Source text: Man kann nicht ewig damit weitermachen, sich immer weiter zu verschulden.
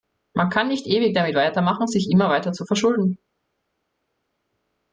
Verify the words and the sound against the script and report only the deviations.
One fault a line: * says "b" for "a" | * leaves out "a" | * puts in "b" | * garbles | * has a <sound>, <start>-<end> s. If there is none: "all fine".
all fine